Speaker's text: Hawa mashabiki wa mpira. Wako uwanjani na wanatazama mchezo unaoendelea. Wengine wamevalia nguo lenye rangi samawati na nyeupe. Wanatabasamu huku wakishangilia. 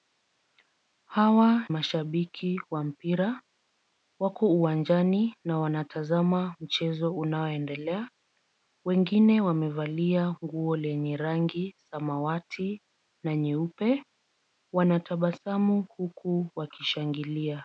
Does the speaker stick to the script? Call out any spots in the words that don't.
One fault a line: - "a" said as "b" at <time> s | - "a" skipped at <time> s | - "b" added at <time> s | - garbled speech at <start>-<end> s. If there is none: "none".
none